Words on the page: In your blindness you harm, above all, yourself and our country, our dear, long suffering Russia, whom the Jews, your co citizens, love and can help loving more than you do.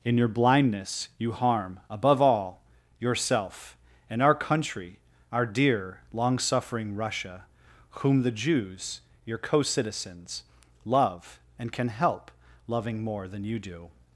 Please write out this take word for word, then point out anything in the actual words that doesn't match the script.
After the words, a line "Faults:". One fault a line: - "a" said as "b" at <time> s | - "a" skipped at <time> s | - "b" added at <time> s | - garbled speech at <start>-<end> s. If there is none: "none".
In your blindness you harm, above all, yourself and our country, our dear, long suffering Russia, whom the Jews, your co citizens, love and can help loving more than you do.
Faults:
none